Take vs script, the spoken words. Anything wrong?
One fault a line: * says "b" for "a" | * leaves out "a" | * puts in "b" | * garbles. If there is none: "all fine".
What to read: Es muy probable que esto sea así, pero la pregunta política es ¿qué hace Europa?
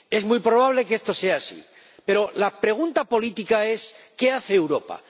all fine